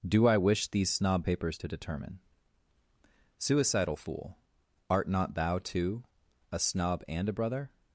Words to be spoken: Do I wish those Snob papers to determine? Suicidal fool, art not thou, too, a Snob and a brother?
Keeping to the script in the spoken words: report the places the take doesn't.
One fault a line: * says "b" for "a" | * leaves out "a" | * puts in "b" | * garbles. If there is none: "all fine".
* says "these" for "those"